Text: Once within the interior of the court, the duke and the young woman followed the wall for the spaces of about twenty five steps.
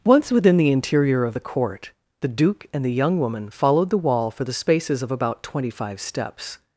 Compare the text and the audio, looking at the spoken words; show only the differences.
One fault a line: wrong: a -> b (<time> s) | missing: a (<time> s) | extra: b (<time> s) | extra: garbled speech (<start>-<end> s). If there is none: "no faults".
no faults